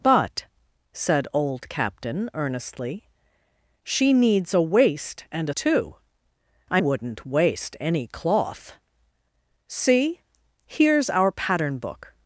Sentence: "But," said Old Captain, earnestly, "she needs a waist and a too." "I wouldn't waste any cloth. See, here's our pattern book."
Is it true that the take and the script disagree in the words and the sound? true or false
false